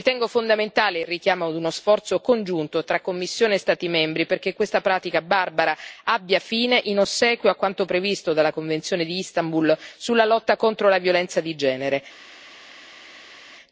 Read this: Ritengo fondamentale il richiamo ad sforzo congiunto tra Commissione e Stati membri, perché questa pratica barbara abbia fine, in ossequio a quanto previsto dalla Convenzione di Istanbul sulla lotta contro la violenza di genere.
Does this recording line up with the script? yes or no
no